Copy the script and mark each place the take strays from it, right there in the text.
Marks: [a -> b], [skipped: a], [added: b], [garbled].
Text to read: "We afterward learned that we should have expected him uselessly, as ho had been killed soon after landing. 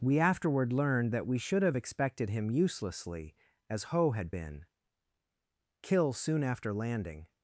"We afterward learned that we should have expected him uselessly, as ho had been [killed -> kill] soon after landing.